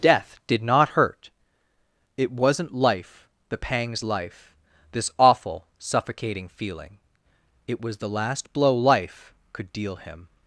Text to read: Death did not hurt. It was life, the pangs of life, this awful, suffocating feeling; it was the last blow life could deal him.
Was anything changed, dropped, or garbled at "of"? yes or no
yes